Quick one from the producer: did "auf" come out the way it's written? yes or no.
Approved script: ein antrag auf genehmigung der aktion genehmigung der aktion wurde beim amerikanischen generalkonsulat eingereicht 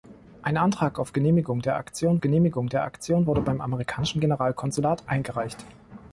yes